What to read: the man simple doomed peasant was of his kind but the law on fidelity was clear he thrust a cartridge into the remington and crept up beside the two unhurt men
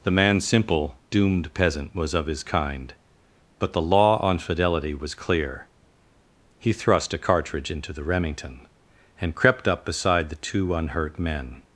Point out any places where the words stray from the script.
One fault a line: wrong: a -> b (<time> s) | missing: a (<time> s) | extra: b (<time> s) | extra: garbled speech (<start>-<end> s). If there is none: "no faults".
no faults